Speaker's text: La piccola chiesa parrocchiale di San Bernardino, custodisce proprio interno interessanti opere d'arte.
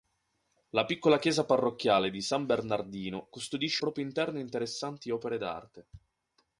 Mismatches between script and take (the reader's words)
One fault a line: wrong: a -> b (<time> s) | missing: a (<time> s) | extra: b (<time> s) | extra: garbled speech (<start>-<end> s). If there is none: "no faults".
no faults